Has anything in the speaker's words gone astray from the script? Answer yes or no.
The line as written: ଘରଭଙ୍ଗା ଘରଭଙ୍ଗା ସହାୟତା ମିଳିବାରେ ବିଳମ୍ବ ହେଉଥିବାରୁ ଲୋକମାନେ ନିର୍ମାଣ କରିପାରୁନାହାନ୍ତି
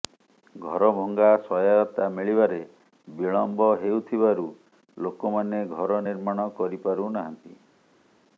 yes